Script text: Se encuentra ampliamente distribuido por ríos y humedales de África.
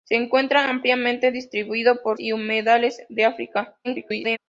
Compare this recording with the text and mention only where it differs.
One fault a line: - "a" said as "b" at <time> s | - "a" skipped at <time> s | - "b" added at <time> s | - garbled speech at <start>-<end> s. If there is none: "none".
- "ríos" skipped at 2.2 s
- garbled speech at 3.8-4.4 s